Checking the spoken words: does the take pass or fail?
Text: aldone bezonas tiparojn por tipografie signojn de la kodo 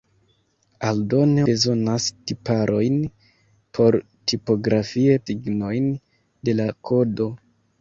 pass